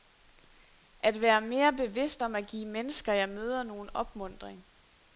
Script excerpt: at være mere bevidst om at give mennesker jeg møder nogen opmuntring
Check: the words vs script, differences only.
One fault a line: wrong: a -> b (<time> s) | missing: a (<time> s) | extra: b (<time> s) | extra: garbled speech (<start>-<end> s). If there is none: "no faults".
no faults